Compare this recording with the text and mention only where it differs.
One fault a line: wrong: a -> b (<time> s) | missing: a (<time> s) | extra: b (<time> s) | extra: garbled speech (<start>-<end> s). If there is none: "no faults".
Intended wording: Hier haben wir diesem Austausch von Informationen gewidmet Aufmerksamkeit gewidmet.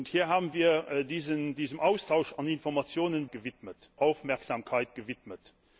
no faults